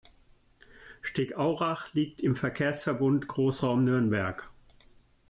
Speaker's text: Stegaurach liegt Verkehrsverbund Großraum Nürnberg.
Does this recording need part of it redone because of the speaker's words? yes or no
yes